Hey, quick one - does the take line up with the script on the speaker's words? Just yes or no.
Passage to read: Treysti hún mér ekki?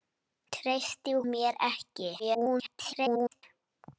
no